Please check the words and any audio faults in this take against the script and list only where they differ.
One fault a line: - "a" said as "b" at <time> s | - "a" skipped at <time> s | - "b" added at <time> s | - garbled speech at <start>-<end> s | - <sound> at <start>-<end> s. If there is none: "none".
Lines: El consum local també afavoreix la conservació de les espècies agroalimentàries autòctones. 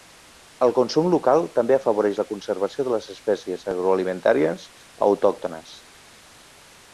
none